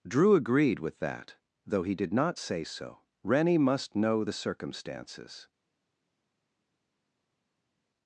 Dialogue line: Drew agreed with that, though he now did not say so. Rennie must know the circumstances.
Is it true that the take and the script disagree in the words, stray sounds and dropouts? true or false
true